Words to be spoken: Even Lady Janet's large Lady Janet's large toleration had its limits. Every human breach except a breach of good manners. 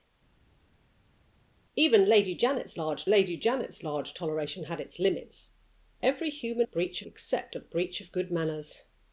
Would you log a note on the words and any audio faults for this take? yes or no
no